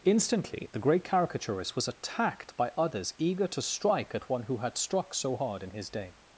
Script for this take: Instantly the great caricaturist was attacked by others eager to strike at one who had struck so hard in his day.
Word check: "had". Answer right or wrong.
right